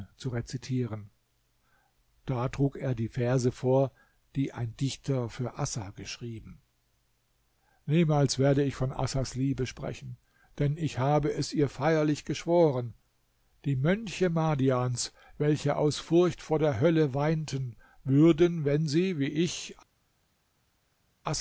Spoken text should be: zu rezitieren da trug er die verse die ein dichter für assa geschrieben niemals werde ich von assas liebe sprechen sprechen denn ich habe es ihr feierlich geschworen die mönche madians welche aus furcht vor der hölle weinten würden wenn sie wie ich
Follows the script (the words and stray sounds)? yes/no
no